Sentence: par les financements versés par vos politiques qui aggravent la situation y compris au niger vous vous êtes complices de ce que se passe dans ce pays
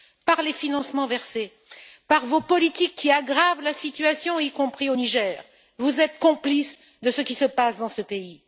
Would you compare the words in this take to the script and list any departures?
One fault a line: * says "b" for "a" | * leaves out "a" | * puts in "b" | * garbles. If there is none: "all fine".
* leaves out "vous"
* says "qui" for "que"